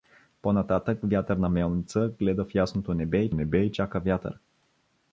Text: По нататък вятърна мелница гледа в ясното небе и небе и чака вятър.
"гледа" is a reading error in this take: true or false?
false